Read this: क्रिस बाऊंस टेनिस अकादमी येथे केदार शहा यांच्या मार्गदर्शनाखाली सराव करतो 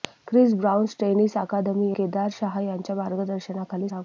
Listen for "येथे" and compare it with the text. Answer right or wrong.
wrong